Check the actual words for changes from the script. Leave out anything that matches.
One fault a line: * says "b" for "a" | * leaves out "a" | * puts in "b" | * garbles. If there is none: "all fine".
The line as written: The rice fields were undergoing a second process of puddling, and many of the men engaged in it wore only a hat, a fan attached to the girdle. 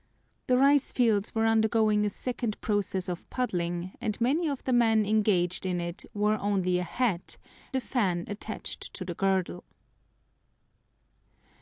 all fine